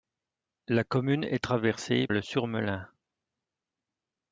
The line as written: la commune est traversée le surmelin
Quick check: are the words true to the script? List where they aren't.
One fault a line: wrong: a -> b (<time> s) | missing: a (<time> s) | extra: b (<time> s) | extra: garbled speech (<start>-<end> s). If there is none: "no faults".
no faults